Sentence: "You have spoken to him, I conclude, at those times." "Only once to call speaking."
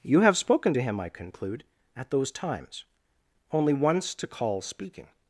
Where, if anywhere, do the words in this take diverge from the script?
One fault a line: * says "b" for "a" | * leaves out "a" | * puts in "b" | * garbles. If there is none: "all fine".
all fine